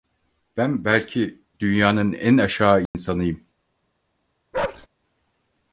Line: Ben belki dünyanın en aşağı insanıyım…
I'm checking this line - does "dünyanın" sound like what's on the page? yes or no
yes